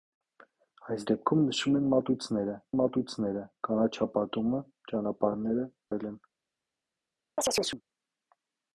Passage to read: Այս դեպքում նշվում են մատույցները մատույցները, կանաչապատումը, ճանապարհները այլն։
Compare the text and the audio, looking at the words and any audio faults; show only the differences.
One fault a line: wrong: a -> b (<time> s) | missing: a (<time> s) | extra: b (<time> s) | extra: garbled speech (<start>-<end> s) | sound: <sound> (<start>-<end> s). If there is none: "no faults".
sound: chirp (7.4-7.8 s)